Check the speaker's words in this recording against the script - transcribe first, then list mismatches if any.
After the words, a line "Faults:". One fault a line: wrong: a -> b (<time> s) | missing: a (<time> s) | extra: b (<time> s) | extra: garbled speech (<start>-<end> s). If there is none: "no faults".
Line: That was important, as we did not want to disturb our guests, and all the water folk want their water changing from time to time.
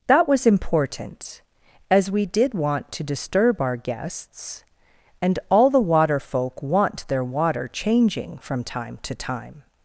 That was important, as we did want to disturb our guests, and all the water folk want their water changing from time to time.
Faults:
missing: not (2.5 s)